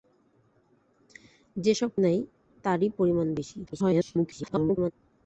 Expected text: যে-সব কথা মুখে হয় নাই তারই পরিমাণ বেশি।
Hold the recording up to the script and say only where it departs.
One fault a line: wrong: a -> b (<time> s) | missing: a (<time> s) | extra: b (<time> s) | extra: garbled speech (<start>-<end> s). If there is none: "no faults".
missing: কথা মুখে হয় (1.9 s)
extra: garbled speech (3.7-4.9 s)